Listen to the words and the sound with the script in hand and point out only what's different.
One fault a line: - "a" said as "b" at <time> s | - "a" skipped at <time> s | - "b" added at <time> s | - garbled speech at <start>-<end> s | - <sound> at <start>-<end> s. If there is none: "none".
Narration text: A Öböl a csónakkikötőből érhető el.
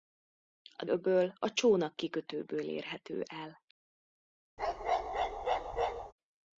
- bark at 4.6-6.1 s